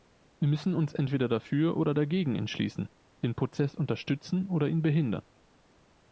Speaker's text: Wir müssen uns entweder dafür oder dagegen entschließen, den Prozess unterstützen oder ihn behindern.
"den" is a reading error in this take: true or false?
false